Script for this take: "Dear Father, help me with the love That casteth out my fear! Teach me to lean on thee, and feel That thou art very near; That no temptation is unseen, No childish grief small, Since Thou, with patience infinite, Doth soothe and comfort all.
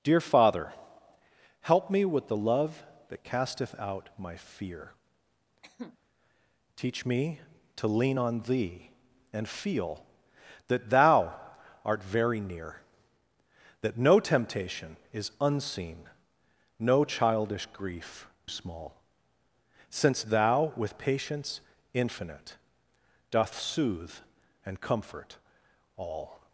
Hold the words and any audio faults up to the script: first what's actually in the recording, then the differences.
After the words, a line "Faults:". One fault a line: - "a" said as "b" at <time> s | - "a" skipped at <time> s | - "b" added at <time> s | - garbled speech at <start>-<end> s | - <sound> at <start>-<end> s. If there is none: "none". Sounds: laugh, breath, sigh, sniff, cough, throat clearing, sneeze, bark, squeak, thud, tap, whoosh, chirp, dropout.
"Dear Father, help me with the love That casteth out my fear! Teach me to lean on thee, and feel That thou art very near; That no temptation is unseen, No childish grief small, Since Thou, with patience infinite, Doth soothe and comfort all.
Faults:
- cough at 5.6-6.0 s